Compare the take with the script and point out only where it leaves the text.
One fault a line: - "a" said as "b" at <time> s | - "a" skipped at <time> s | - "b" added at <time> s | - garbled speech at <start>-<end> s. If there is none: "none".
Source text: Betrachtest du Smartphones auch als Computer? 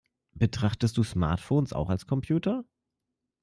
none